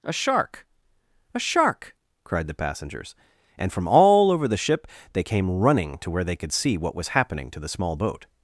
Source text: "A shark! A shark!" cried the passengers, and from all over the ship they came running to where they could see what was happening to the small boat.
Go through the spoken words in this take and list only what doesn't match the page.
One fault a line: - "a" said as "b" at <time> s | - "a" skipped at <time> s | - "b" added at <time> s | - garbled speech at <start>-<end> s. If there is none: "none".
none